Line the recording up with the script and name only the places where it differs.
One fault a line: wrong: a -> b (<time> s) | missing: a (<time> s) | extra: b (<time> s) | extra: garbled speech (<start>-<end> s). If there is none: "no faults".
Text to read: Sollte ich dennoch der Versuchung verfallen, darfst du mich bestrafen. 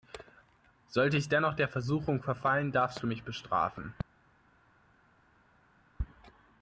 no faults